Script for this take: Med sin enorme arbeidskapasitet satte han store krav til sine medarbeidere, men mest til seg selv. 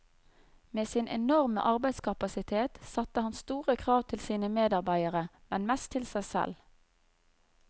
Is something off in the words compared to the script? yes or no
no